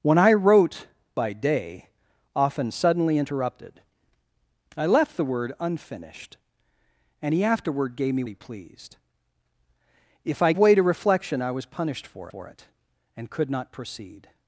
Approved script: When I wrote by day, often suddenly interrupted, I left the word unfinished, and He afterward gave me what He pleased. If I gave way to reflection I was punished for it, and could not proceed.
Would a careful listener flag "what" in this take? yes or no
yes